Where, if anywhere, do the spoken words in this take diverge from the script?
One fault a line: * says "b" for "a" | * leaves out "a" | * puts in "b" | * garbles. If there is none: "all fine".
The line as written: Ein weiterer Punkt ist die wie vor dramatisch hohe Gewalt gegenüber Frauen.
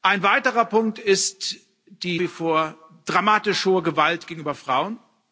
all fine